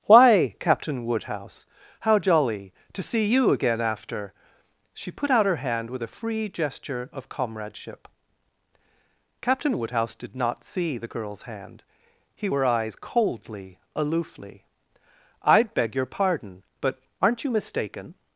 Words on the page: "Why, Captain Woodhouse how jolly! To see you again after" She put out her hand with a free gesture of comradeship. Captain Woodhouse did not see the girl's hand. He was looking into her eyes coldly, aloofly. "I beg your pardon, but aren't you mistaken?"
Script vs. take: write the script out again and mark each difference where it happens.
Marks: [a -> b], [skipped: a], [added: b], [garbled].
"Why, Captain Woodhouse how jolly! To see you again after" She put out her hand with a free gesture of comradeship. Captain Woodhouse did not see the girl's hand. He [skipped: was looking into] her eyes coldly, aloofly. "I beg your pardon, but aren't you mistaken?"